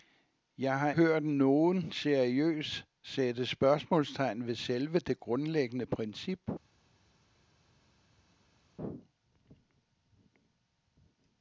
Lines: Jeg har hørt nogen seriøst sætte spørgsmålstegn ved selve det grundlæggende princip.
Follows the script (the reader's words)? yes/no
yes